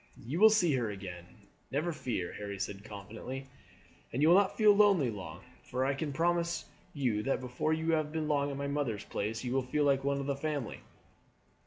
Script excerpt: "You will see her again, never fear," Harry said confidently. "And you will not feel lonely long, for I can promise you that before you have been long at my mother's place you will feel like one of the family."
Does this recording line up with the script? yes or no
yes